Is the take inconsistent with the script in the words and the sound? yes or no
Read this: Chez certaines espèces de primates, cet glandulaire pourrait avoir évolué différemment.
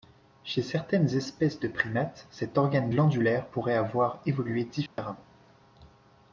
yes